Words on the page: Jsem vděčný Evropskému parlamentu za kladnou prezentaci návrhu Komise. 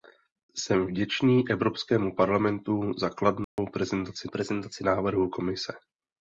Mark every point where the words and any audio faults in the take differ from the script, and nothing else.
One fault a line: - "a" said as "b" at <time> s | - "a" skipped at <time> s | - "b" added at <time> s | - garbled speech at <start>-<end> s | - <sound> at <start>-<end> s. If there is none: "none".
- dropout at 3.4-3.6 s
- "prezentaci" added at 4.2 s